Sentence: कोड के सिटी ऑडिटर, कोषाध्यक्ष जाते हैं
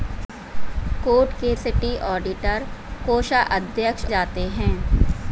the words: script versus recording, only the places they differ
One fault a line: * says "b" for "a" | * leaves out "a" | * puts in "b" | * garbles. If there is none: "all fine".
all fine